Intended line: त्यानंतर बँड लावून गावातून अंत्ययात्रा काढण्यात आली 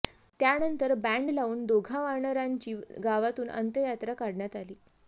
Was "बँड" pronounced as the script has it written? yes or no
yes